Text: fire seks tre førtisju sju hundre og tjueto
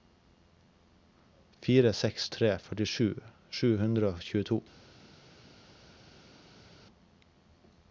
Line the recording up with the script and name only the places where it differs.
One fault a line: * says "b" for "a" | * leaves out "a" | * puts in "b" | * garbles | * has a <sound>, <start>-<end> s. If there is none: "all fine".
all fine